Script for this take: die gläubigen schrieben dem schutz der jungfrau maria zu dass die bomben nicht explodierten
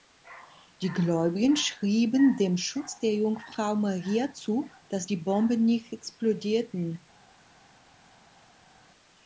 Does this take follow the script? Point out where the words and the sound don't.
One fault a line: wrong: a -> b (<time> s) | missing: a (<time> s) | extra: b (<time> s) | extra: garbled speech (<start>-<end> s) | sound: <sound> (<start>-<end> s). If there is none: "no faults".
no faults